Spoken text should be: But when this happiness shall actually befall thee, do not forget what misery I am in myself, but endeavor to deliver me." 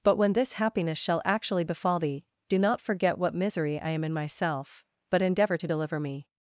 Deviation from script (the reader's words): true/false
false